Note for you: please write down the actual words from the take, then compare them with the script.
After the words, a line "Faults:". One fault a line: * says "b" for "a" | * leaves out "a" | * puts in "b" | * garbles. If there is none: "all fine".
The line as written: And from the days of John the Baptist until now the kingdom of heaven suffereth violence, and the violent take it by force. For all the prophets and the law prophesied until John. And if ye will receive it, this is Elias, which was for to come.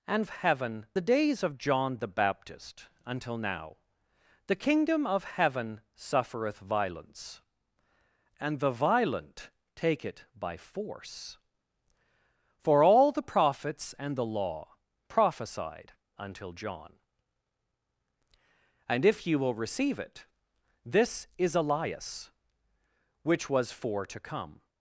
And heaven the days of John the Baptist until now the kingdom of heaven suffereth violence, and the violent take it by force. For all the prophets and the law prophesied until John. And if ye will receive it, this is Elias, which was for to come.
Faults:
* says "heaven" for "from"